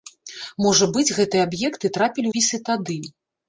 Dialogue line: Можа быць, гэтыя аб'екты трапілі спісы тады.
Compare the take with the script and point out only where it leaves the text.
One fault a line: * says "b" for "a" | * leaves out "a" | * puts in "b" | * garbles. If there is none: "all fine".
all fine